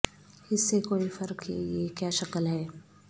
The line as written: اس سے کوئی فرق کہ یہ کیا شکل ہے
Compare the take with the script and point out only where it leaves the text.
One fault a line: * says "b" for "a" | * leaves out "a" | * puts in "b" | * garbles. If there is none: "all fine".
all fine